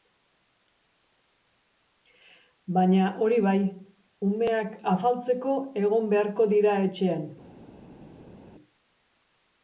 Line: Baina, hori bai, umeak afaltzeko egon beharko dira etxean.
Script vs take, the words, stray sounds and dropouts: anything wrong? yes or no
no